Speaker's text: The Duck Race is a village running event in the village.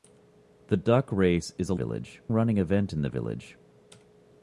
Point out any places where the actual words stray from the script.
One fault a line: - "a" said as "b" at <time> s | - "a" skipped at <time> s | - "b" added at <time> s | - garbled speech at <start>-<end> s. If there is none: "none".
none